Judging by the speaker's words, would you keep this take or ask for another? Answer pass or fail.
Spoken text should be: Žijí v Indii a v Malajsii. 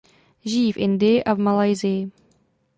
pass